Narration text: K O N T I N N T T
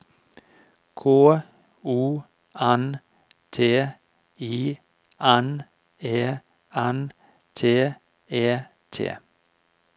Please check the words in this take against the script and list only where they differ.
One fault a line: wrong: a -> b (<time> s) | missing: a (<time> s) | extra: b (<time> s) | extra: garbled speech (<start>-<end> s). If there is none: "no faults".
extra: E (6.0 s)
extra: E (8.3 s)